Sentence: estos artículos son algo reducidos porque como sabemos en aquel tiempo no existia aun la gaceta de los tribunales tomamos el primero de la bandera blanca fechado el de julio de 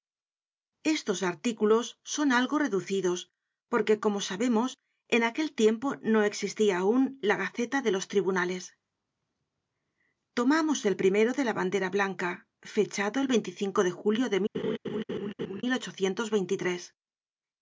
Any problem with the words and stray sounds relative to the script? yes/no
yes